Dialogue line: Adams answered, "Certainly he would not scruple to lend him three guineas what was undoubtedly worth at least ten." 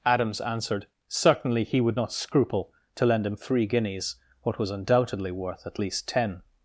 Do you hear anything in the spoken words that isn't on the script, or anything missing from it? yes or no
no